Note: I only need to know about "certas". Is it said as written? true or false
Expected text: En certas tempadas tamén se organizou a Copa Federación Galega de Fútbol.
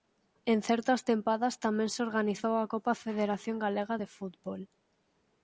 true